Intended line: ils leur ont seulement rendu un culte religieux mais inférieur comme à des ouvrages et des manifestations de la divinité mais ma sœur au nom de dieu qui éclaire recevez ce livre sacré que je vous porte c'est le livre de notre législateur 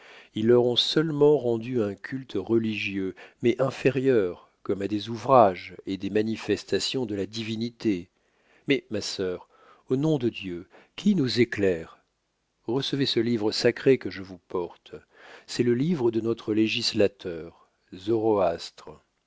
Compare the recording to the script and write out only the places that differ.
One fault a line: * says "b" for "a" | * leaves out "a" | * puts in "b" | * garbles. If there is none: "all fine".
* puts in "nous"